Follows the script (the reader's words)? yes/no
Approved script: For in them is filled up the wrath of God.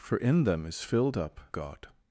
no